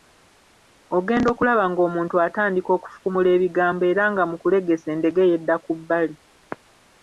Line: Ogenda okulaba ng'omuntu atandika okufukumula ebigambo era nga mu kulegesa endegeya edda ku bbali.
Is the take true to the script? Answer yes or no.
yes